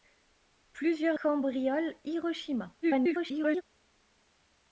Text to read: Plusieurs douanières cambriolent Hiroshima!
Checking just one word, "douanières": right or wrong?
wrong